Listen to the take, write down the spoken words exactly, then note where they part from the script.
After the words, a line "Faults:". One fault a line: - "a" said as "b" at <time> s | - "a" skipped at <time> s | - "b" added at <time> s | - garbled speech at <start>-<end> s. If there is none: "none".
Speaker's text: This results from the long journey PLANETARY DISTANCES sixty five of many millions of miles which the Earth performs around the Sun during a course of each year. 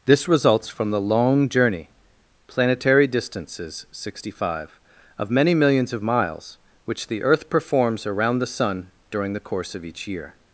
This results from the long journey PLANETARY DISTANCES sixty five of many millions of miles which the Earth performs around the Sun during the course of each year.
Faults:
- "a" said as "the" at 9.3 s